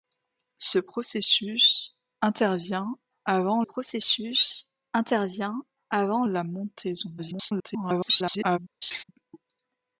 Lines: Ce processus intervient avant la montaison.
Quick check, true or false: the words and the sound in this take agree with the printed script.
false